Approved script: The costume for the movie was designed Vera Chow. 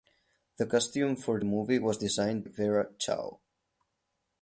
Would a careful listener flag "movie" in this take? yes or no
no